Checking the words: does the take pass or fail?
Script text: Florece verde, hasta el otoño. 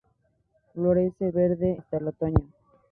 pass